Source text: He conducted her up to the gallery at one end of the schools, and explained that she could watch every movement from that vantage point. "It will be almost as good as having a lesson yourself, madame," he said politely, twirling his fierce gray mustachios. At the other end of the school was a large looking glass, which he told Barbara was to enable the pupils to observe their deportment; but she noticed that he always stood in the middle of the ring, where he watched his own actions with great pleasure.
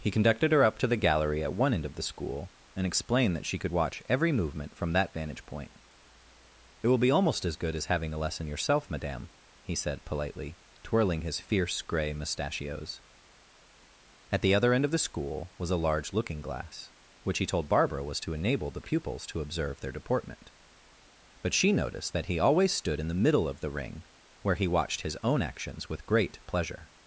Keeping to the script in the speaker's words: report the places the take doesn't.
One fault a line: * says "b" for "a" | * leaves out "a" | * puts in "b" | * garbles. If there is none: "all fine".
* says "school" for "schools"